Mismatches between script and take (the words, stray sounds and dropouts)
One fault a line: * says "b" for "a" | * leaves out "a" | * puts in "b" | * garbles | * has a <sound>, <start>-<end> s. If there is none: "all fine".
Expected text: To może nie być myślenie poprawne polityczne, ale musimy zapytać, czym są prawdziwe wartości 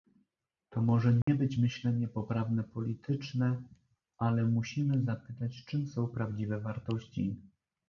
* has a dropout, 1.2-1.3 s